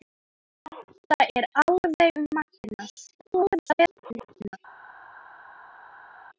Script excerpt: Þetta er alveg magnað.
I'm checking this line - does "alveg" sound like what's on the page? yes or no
yes